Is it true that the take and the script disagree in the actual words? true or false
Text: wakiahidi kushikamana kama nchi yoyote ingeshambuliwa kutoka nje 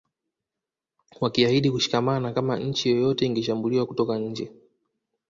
false